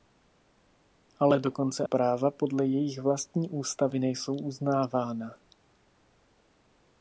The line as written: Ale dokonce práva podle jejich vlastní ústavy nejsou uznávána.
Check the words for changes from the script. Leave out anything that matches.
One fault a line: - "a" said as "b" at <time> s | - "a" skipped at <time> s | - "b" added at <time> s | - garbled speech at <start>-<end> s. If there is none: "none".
none